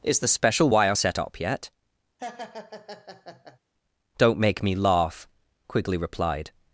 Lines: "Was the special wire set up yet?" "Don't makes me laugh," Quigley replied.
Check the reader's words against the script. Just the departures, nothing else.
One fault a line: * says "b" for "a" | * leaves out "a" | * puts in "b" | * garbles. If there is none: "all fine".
* says "Is" for "Was"
* says "make" for "makes"